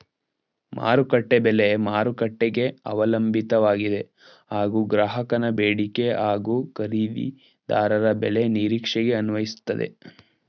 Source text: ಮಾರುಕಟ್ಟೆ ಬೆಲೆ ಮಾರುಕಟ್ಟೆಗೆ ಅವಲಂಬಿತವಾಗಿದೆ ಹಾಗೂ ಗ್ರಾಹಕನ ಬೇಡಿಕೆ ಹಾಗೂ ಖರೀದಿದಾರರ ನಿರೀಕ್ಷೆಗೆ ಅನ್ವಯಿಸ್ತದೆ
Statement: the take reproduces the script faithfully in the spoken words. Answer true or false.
false